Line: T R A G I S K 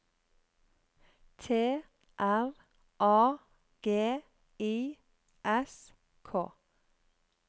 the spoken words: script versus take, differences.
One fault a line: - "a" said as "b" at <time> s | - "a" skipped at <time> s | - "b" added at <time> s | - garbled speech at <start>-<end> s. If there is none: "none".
none